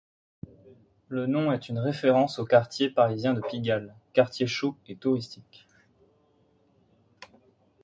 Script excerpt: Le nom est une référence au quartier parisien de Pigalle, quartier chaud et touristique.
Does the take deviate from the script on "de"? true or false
false